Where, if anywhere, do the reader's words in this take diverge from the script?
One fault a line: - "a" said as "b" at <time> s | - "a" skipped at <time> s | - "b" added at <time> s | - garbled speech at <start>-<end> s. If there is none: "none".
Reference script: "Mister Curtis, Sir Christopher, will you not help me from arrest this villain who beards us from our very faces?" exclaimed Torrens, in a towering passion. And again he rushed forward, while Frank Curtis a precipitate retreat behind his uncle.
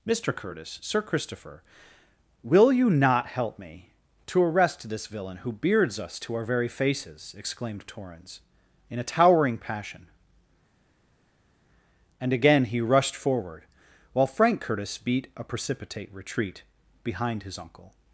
- "from" said as "to" at 4.2 s
- "from" said as "to" at 6.2 s
- "beat" added at 15.0 s